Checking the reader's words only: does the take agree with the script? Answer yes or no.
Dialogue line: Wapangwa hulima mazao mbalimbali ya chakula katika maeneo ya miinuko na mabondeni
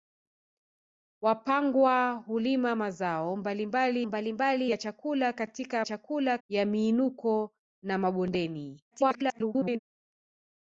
no